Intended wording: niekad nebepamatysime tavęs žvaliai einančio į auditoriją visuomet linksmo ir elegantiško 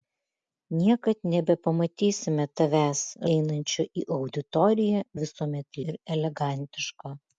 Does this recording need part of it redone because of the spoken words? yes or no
yes